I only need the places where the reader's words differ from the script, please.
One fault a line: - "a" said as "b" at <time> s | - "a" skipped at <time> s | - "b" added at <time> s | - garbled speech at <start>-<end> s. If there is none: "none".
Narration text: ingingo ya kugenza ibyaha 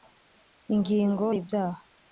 - "ya kugenza" skipped at 1.3 s